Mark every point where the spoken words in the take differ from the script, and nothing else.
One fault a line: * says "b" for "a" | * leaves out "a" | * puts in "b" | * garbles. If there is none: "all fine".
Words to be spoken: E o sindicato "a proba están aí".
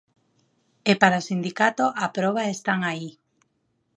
* puts in "para"